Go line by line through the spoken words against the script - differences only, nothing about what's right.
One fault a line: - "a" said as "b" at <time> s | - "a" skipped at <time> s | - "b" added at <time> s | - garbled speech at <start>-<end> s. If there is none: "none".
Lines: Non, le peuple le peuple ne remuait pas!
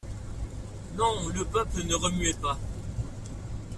- "le peuple" skipped at 1.8 s